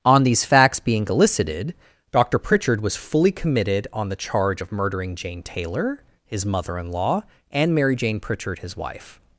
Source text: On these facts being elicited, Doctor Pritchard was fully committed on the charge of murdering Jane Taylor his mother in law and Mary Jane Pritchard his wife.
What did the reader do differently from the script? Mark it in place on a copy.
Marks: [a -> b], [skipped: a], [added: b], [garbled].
On these facts being elicited, Doctor Pritchard was fully committed on the charge of murdering Jane Taylor his mother in law and Mary Jane Pritchard his wife.